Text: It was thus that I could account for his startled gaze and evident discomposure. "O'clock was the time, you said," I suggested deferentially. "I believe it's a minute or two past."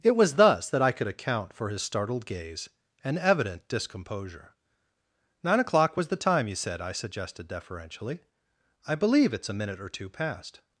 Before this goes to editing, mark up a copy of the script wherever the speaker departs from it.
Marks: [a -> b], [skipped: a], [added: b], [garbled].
It was thus that I could account for his startled gaze and evident discomposure. [added: Nine] "O'clock was the time, you said," I suggested deferentially. "I believe it's a minute or two past."